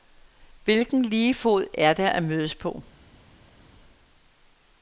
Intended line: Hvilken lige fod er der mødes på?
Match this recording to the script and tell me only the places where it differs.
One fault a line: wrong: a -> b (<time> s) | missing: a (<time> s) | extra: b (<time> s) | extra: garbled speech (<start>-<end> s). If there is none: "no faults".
extra: at (2.1 s)